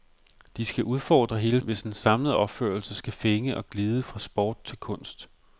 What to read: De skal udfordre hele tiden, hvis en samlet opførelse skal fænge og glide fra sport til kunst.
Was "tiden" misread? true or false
true